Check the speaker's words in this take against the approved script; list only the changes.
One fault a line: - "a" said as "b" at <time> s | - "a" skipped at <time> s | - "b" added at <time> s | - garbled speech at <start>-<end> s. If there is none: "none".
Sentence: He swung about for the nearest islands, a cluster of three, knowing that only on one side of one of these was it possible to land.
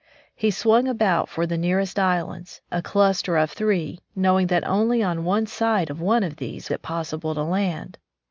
- "was" skipped at 6.7 s